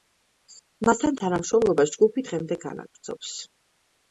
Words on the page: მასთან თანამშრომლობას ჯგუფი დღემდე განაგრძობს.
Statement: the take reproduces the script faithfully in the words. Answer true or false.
true